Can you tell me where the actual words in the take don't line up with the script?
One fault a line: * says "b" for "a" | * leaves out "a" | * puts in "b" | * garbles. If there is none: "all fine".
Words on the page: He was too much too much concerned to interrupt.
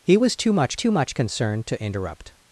all fine